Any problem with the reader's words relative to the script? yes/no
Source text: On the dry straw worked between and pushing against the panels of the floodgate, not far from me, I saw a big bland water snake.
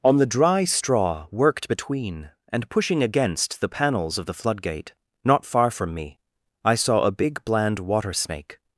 no